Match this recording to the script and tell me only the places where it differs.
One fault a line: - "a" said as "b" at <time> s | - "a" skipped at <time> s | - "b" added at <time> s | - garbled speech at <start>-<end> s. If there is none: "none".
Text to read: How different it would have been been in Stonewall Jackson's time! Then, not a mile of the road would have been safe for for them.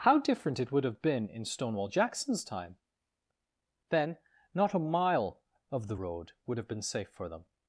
- "been" skipped at 1.3 s
- "for" skipped at 7.3 s